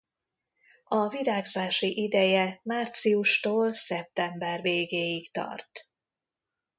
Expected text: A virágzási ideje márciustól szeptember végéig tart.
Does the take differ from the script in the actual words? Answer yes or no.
no